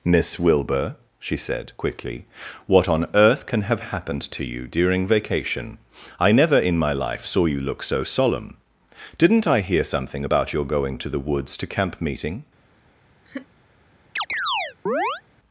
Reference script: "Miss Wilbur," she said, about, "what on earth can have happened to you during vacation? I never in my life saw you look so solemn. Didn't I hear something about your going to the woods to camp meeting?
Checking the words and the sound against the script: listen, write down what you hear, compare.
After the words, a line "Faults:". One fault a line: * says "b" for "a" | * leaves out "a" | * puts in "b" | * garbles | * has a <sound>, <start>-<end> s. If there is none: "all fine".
"Miss Wilbur," she said, quickly, "what on earth can have happened to you during vacation? I never in my life saw you look so solemn. Didn't I hear something about your going to the woods to camp meeting?
Faults:
* says "quickly" for "about"
* has a laugh, 13.3-13.5 s
* has a chirp, 14.2-15.2 s